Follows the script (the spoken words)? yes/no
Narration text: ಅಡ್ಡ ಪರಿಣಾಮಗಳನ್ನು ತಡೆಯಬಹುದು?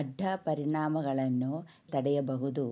yes